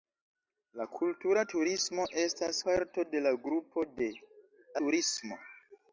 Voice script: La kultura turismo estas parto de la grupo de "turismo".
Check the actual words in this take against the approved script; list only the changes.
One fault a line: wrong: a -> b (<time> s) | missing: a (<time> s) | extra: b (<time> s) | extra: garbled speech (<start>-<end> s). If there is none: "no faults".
no faults